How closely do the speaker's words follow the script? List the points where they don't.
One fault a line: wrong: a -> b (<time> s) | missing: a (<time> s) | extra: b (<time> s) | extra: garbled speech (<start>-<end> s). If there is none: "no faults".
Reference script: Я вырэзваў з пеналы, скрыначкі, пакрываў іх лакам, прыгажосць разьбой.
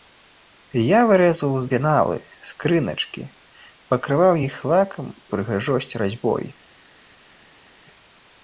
no faults